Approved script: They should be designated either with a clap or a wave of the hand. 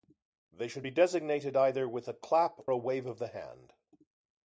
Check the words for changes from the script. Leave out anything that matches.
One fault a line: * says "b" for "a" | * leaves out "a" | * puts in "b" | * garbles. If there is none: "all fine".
* leaves out "or"